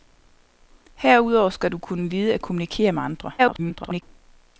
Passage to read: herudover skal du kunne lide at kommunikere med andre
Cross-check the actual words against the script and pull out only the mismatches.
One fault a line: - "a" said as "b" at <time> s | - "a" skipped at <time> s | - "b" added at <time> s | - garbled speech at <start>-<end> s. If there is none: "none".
- garbled speech at 3.4-4.0 s